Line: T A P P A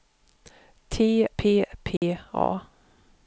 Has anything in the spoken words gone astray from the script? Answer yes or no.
yes